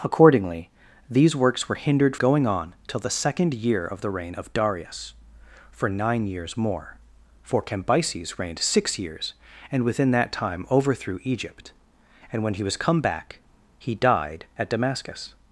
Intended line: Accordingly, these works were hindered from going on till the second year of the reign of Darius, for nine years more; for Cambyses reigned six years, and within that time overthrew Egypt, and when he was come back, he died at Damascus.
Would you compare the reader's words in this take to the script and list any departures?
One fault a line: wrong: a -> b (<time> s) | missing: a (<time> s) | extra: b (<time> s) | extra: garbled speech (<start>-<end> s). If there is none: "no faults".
missing: from (2.1 s)